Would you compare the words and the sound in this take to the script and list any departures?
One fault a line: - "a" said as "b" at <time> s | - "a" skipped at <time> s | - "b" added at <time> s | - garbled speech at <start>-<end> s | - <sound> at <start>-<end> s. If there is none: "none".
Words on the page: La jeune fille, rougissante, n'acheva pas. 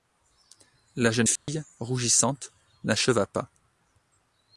- dropout at 1.4-1.5 s